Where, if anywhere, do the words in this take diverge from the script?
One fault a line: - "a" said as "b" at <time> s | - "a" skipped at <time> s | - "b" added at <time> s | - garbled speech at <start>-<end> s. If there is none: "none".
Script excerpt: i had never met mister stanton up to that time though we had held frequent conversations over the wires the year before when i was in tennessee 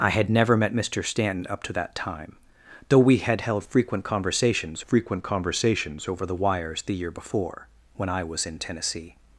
- "frequent conversations" added at 4.8 s